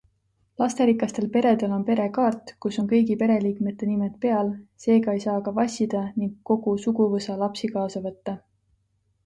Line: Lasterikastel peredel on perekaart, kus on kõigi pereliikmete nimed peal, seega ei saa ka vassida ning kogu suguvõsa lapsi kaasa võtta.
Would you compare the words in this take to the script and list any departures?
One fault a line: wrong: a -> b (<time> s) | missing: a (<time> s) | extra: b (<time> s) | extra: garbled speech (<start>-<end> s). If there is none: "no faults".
no faults